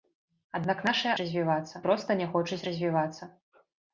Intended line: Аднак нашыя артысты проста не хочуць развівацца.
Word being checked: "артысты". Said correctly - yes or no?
no